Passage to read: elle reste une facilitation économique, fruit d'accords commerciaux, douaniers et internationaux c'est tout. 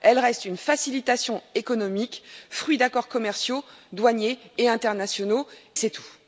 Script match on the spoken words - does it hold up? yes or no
yes